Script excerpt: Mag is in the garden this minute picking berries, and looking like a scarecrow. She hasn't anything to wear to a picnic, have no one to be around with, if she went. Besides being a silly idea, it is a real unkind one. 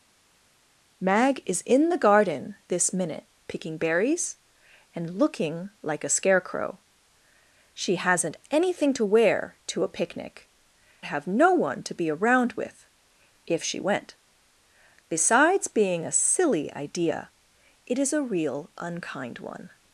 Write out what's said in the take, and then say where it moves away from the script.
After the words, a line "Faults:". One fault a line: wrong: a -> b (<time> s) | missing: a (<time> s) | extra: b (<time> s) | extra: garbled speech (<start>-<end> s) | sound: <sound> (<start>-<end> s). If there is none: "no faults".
Mag is in the garden this minute picking berries, and looking like a scarecrow. She hasn't anything to wear to a picnic, have no one to be around with, if she went. Besides being a silly idea, it is a real unkind one.
Faults:
no faults